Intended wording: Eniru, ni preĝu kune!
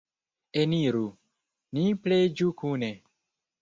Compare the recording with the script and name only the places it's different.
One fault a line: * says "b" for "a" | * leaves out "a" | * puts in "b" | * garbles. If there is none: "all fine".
all fine